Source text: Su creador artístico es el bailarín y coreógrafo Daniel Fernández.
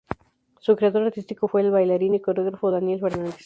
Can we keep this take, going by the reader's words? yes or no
no